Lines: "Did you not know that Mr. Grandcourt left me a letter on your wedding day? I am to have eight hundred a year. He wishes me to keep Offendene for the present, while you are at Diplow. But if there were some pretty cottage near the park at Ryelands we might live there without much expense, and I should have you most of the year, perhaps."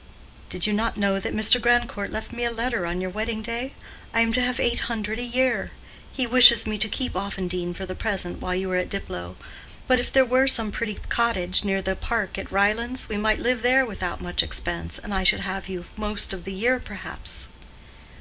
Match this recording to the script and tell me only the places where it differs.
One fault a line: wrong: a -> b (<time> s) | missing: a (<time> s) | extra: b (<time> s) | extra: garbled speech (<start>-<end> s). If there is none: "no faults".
no faults